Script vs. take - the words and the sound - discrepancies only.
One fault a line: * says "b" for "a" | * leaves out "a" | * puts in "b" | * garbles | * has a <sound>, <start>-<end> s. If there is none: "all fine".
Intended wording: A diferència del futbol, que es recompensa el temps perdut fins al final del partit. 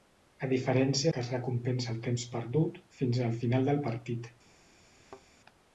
* leaves out "del futbol"
* has a thud, 5.0-5.2 s